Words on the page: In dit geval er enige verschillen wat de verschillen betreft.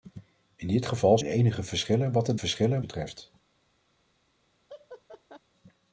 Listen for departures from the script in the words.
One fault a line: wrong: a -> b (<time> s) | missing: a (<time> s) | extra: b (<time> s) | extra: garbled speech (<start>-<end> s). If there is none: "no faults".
no faults